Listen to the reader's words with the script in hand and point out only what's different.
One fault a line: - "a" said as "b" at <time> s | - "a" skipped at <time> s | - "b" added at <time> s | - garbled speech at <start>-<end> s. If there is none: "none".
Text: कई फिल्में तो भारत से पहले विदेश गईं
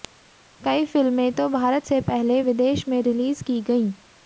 - "में रिलीज की" added at 2.9 s